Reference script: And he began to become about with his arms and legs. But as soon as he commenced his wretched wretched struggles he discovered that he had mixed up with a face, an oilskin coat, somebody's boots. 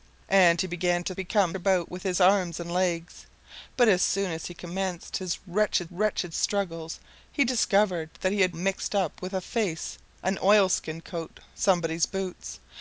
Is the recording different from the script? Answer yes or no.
no